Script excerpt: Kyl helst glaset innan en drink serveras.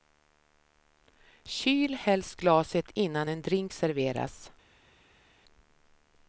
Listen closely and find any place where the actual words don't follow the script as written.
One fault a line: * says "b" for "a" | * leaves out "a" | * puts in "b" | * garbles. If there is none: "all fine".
all fine